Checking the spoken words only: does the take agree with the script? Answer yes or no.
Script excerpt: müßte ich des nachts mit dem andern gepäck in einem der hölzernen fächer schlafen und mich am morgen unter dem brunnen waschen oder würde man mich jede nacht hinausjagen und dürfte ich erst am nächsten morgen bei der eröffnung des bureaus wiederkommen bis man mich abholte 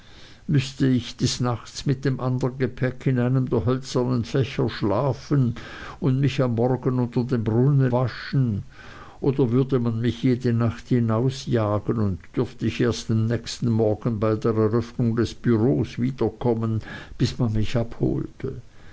yes